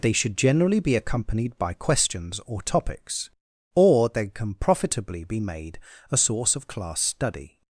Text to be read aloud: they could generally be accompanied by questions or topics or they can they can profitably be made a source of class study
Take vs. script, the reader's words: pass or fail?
fail